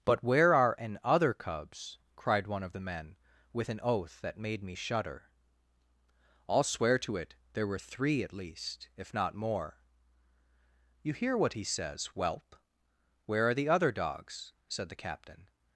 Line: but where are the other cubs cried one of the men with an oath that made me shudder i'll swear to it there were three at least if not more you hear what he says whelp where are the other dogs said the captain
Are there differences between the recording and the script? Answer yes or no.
yes